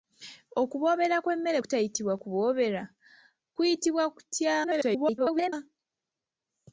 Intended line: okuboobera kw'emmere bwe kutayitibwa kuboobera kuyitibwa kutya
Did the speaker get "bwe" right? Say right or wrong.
wrong